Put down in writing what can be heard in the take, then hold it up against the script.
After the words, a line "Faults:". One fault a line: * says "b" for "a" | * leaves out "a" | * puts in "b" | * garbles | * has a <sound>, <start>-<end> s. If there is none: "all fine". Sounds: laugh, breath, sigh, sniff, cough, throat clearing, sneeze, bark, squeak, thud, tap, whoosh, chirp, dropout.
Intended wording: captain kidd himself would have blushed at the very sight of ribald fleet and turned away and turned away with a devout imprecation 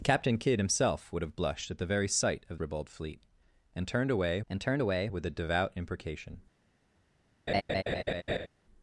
captain kidd himself would have blushed at the very sight of ribald fleet and turned away and turned away with a devout imprecation
Faults:
* has a laugh, 7.5-8.5 s